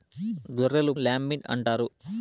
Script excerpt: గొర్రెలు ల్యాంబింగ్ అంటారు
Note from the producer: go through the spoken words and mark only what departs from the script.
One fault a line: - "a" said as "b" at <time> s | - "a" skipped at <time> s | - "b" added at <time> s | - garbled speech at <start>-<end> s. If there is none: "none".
none